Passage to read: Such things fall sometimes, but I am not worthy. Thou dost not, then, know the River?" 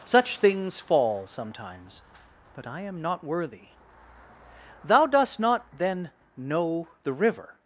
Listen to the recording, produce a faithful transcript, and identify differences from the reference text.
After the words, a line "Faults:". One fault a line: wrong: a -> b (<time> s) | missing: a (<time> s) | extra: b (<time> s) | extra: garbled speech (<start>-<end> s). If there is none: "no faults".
Such things fall sometimes, but I am not worthy. Thou dost not, then, know the River?"
Faults:
no faults